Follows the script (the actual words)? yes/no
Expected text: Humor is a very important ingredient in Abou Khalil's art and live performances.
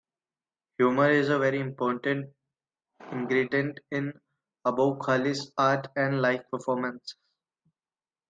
yes